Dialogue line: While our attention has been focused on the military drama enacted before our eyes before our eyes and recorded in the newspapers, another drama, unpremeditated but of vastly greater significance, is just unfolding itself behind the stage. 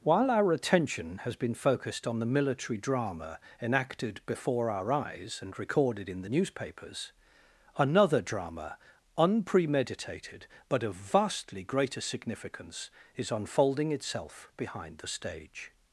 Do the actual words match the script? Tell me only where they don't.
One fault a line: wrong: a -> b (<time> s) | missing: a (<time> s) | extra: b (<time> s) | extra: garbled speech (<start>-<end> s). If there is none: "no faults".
missing: before our eyes (5.4 s)
missing: just (13.3 s)